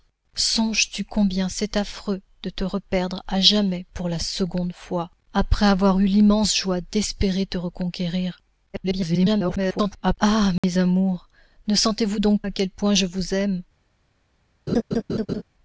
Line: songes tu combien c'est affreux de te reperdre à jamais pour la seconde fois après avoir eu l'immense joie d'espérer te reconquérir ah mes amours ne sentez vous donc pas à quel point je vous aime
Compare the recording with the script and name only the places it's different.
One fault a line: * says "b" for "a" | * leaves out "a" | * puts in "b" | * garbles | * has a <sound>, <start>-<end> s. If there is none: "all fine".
* garbles
* has a dropout, 10.6-10.6 s
* leaves out "pas"
* has a laugh, 14.7-15.4 s